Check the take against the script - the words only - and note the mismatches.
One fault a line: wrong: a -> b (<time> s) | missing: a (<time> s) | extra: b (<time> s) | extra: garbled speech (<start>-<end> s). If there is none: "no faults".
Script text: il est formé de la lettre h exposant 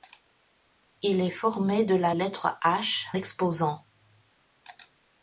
no faults